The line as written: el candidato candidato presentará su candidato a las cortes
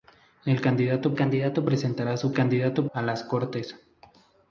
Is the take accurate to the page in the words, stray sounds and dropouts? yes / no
yes